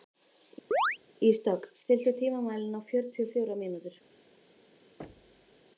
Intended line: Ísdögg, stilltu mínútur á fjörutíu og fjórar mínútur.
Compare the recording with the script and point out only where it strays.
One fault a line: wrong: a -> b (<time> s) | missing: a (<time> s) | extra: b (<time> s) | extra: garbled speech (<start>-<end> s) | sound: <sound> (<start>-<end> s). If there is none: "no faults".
sound: chirp (0.7-1.0 s)
wrong: mínútur -> tímamælinn (2.2 s)
sound: thud (5.0-5.6 s)